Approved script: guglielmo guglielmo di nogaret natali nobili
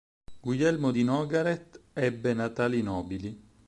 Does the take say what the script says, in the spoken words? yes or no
no